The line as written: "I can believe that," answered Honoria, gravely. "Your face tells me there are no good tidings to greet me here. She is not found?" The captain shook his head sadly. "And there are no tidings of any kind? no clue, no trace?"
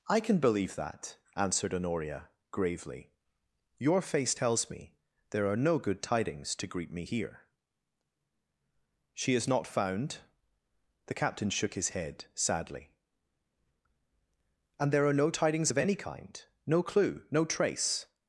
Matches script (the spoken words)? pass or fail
pass